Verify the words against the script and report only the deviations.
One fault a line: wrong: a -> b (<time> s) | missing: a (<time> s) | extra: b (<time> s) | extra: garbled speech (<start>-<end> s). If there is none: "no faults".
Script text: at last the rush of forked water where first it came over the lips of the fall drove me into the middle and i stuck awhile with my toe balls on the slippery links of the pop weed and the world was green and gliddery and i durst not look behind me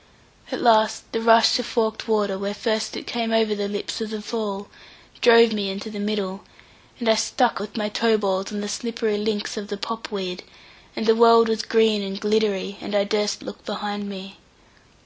missing: awhile (7.6 s)
missing: not (13.4 s)